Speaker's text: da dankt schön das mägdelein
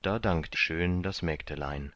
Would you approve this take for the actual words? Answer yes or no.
yes